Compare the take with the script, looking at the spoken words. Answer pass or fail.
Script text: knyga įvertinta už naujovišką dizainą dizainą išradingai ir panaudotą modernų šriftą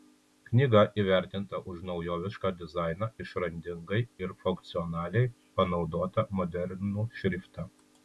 fail